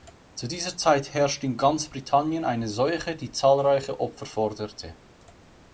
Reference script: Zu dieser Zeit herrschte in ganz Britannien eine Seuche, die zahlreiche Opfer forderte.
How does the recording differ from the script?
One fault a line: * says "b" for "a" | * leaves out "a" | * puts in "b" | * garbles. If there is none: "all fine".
all fine